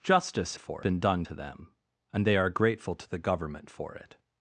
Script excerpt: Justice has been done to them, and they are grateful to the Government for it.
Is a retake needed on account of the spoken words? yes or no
yes